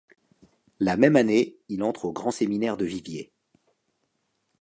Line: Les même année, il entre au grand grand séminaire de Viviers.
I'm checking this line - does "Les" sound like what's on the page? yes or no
no